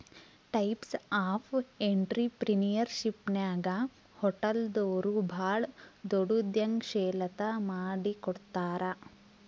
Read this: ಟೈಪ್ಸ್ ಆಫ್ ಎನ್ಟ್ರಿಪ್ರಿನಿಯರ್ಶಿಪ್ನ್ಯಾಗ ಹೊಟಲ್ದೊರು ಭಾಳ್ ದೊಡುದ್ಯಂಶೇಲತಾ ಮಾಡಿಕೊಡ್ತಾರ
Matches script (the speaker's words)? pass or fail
pass